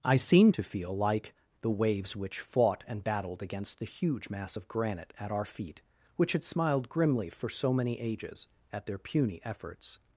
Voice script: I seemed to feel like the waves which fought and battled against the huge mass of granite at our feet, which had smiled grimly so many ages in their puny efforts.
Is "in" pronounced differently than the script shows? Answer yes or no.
yes